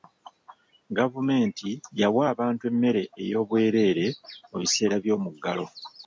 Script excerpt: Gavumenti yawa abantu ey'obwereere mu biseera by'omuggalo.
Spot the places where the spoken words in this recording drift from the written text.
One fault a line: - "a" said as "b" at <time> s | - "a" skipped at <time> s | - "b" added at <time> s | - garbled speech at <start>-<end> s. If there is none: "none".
- "emmere" added at 2.7 s